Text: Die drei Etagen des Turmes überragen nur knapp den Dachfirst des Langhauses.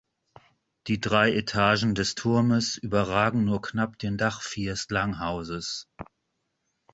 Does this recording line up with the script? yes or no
no